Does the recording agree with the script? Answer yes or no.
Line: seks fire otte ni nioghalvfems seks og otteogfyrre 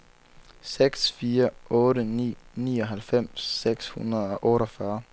no